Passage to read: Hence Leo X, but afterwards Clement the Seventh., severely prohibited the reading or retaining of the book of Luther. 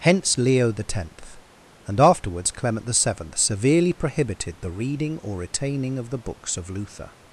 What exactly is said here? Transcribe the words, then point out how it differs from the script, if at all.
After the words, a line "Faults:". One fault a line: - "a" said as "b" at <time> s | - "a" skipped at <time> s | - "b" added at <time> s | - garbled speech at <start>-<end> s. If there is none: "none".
Hence Leo X, and afterwards Clement the Seventh., severely prohibited the reading or retaining of the books of Luther.
Faults:
- "but" said as "and" at 1.9 s
- "book" said as "books" at 6.2 s